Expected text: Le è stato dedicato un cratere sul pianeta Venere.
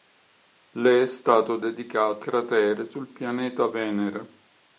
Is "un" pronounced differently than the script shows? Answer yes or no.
yes